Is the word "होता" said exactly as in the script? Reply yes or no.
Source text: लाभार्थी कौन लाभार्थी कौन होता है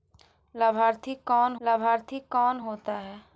yes